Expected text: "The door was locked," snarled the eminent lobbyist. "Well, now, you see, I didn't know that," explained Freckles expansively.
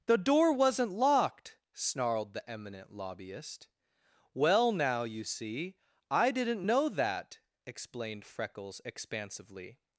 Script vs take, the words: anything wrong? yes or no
yes